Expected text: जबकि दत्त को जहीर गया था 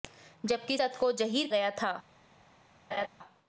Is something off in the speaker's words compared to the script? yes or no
no